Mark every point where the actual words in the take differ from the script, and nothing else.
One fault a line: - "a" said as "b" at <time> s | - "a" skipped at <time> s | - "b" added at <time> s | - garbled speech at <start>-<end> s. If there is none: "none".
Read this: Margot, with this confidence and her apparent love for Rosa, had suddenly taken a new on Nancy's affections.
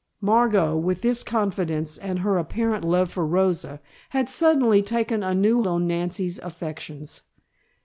none